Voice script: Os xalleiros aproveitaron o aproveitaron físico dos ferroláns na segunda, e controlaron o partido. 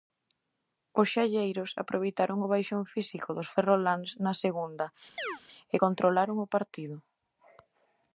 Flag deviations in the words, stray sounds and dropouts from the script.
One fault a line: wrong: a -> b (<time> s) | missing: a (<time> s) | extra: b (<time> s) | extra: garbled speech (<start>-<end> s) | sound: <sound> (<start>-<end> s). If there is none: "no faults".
wrong: aproveitaron -> baixón (2.5 s)
sound: chirp (5.2-5.4 s)